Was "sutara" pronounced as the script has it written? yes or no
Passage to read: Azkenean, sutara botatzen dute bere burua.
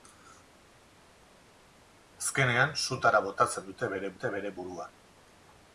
yes